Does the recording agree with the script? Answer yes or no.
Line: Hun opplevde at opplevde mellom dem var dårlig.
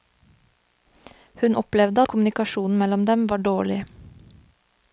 no